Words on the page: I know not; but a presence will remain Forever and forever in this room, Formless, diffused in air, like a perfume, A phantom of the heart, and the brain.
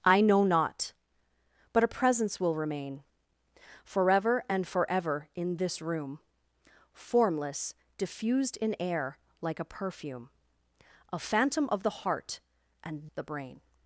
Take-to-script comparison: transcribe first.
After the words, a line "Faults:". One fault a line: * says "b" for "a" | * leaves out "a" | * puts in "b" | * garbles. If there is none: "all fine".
I know not; but a presence will remain Forever and forever in this room, Formless, diffused in air, like a perfume, A phantom of the heart, and the brain.
Faults:
all fine